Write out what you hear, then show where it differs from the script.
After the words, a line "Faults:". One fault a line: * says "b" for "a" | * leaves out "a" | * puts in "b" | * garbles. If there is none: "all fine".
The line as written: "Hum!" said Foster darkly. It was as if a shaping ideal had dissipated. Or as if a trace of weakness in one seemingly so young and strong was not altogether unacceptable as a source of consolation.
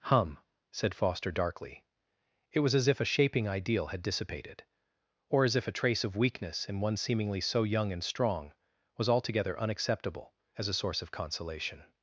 "Hum!" said Foster darkly. It was as if a shaping ideal had dissipated. Or as if a trace of weakness in one seemingly so young and strong was altogether unacceptable as a source of consolation.
Faults:
* leaves out "not"